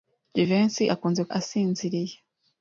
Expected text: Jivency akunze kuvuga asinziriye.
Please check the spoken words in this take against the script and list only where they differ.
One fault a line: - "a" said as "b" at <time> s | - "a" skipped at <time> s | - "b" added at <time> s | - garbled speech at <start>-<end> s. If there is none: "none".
- "kuvuga" skipped at 1.2 s